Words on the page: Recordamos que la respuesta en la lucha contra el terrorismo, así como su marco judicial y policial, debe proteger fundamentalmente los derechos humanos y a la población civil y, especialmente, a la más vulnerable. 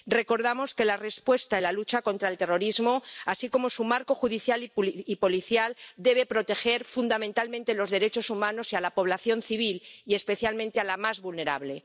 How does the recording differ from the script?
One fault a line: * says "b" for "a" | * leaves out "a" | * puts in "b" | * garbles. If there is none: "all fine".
all fine